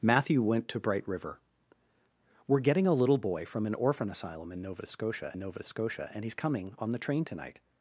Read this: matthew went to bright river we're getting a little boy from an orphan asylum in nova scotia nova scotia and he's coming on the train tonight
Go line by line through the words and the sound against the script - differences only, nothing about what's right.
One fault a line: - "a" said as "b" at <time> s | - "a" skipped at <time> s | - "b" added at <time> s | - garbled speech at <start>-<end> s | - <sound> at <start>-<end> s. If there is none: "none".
none